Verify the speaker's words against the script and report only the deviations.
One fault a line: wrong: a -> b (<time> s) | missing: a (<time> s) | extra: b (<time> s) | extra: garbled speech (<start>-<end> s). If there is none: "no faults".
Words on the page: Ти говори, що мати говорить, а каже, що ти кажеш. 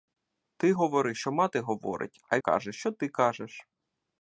no faults